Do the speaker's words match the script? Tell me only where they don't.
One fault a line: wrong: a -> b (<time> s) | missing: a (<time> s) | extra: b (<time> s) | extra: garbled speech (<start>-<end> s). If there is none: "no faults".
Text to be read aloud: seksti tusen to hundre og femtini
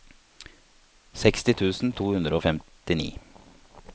no faults